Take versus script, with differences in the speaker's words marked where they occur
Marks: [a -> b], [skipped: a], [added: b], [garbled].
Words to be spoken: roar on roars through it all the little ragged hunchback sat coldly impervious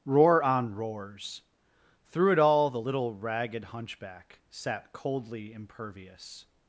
roar on roars through it all the little ragged hunchback sat coldly impervious